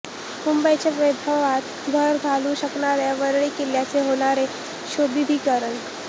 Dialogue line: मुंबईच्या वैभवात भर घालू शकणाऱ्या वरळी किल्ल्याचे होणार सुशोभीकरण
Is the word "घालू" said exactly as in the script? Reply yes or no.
yes